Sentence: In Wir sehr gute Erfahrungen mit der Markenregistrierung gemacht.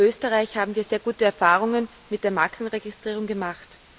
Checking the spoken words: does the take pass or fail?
fail